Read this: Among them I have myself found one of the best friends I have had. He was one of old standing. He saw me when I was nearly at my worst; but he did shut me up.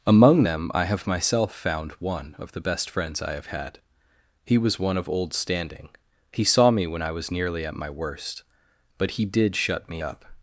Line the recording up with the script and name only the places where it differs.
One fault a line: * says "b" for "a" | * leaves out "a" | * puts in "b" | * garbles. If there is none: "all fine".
all fine